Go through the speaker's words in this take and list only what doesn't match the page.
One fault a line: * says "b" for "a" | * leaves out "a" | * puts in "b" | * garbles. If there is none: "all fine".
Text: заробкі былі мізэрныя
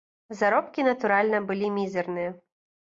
* puts in "натуральна"